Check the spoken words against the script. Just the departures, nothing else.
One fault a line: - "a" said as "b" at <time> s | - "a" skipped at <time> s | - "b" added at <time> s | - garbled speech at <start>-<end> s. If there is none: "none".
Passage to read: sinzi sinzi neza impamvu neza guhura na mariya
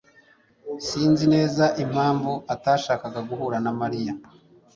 - "sinzi" skipped at 1.2 s
- "neza" said as "atashakaga" at 2.5 s